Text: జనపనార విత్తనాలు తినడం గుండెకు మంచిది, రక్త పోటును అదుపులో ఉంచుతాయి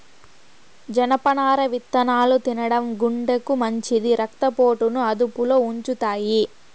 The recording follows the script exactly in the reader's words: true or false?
true